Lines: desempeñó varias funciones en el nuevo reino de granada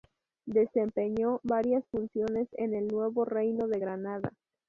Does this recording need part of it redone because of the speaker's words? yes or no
no